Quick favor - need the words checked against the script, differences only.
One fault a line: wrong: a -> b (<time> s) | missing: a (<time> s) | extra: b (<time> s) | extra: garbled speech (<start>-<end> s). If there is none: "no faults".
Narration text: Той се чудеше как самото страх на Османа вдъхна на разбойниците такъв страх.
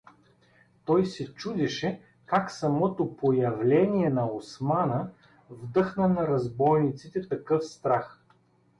wrong: страх -> появление (3.1 s)